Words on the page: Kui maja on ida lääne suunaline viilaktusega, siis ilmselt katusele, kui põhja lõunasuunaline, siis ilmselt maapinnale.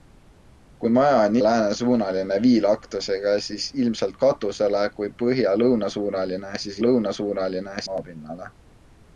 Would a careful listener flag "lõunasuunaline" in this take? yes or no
no